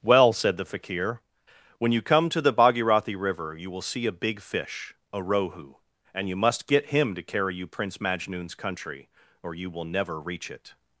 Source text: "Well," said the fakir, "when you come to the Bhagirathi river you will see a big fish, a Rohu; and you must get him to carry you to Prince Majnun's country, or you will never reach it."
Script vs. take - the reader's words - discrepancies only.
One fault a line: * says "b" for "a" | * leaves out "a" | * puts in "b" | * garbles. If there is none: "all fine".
* leaves out "to"